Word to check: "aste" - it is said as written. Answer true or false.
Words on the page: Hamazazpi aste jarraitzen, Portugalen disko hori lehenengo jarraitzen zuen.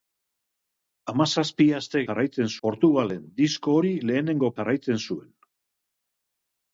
true